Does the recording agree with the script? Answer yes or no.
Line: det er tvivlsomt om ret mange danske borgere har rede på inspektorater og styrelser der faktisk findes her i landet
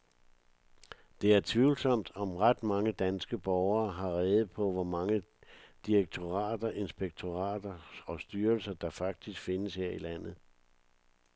no